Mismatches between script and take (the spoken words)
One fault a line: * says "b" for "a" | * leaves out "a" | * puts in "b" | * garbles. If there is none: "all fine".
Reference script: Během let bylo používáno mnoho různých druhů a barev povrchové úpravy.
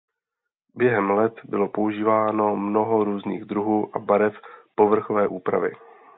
all fine